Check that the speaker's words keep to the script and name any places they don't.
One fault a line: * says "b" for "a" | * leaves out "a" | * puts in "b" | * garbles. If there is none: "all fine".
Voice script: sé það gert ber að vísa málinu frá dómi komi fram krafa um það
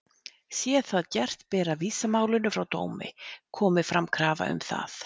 all fine